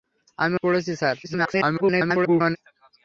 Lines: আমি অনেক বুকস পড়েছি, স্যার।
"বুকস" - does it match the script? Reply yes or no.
no